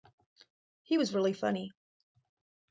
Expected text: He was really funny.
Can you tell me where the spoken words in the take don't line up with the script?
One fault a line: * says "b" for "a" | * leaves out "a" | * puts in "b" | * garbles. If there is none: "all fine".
all fine